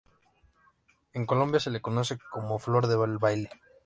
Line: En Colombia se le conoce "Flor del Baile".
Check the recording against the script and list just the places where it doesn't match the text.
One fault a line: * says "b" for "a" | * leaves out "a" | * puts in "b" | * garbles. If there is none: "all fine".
* puts in "como"